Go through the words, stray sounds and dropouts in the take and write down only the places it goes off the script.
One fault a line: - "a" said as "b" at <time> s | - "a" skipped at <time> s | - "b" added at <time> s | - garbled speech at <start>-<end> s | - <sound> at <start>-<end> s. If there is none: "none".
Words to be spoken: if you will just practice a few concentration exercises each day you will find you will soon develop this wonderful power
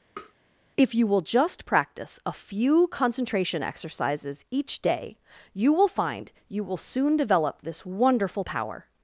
- tap at 0.2-0.3 s